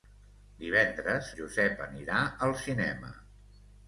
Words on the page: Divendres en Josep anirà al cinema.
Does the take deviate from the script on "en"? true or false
true